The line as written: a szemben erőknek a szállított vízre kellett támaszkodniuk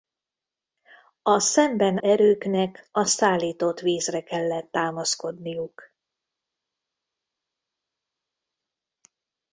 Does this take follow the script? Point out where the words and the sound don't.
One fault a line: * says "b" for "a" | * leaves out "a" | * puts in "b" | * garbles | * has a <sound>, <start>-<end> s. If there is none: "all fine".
all fine